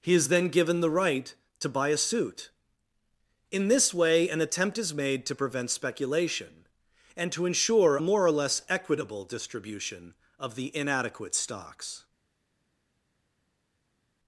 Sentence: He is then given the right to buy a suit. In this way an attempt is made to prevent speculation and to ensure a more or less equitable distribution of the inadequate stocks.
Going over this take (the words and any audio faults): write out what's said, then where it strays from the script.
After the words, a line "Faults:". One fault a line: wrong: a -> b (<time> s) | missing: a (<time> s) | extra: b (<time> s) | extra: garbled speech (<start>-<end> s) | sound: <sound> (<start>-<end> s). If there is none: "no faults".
He is then given the right to buy a suit. In this way an attempt is made to prevent speculation and to ensure more or less equitable distribution of the inadequate stocks.
Faults:
missing: a (8.0 s)